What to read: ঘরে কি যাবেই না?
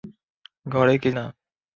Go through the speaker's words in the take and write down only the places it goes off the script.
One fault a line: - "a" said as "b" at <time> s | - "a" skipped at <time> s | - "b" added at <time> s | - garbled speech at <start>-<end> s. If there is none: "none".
- "যাবেই" skipped at 1.1 s